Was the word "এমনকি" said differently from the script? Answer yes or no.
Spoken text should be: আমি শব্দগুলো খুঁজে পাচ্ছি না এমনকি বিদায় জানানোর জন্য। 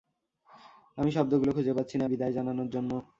yes